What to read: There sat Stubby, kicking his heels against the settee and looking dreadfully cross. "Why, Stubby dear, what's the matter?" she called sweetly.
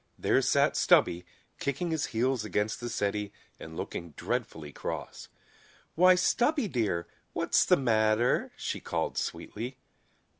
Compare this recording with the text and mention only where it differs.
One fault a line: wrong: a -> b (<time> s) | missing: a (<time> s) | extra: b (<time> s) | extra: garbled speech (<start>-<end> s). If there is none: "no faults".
no faults